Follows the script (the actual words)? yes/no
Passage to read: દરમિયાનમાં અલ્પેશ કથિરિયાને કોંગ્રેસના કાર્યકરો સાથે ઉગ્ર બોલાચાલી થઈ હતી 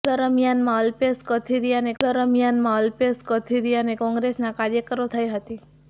no